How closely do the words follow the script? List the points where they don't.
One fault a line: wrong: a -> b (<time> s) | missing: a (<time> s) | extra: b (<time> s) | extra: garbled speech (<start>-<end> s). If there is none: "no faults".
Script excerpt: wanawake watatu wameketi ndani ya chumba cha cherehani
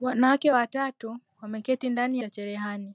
missing: ya chumba (2.2 s)